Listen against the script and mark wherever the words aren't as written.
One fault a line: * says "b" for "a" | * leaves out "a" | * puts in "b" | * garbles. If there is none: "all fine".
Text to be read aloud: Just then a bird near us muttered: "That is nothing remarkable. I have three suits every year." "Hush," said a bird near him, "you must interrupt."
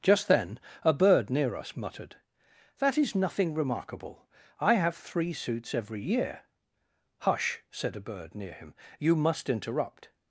all fine